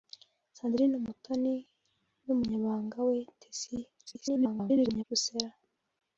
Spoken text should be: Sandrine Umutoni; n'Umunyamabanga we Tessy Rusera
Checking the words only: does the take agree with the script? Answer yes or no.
no